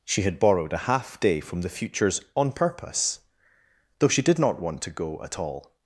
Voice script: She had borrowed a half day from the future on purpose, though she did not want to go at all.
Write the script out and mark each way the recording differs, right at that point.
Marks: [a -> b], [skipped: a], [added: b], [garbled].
She had borrowed a half day from the [future -> futures] on purpose, though she did not want to go at all.